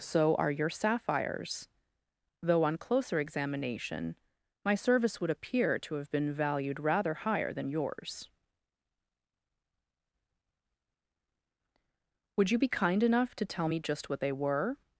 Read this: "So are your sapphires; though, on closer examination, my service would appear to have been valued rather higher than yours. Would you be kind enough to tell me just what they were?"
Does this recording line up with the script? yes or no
yes